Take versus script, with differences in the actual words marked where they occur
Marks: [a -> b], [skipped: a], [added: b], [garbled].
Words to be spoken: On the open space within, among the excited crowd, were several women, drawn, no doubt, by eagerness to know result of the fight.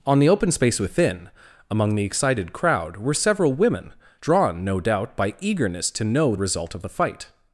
On the open space within, among the excited crowd, were several women, drawn, no doubt, by eagerness to know result of the fight.